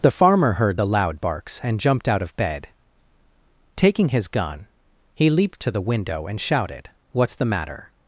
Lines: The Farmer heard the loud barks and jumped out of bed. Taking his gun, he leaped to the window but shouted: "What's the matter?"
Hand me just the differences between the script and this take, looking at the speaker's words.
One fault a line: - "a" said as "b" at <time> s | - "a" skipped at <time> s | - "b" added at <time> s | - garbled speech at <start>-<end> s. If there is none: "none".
- "but" said as "and" at 6.3 s